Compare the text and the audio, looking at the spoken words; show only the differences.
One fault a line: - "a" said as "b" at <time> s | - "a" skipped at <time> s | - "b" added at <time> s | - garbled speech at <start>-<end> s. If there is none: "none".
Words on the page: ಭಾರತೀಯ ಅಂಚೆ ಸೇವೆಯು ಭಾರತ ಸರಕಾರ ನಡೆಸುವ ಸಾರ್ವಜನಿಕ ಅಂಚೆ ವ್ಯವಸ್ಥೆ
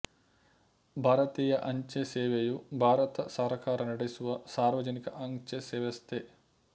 none